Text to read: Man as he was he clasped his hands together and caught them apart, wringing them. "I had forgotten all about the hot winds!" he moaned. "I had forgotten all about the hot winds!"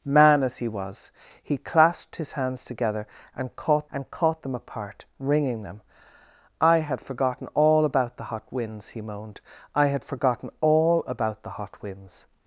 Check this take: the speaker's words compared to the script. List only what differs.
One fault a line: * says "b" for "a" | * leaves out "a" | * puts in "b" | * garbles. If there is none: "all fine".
* puts in "and caught"